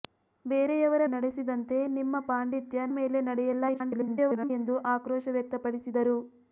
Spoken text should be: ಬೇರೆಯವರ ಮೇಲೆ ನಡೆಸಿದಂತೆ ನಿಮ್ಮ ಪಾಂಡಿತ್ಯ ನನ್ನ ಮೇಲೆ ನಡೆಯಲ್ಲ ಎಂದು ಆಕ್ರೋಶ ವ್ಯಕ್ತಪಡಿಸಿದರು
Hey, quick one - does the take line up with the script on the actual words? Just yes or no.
no